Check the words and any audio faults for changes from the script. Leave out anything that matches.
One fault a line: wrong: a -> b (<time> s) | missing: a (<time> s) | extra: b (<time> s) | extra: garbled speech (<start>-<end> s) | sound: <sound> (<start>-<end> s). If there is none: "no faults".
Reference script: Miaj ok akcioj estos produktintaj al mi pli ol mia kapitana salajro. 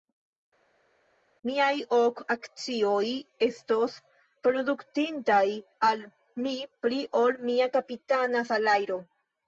no faults